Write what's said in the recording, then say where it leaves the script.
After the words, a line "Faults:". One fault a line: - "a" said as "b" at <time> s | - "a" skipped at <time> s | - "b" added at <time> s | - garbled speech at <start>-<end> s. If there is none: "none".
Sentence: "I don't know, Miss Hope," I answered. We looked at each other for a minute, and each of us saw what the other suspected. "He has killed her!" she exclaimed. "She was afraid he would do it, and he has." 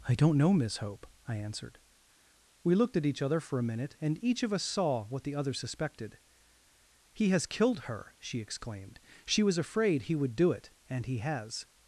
"I don't know, Miss Hope," I answered. We looked at each other for a minute, and each of us saw what the other suspected. "He has killed her!" she exclaimed. "She was afraid he would do it, and he has."
Faults:
none